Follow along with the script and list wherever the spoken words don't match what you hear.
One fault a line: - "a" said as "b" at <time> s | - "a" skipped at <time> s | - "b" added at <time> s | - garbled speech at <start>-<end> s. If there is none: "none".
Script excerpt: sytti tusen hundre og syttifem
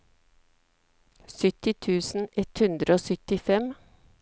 - "ett" added at 2.4 s